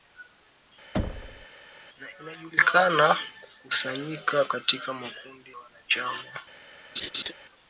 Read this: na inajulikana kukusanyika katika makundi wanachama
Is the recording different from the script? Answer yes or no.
no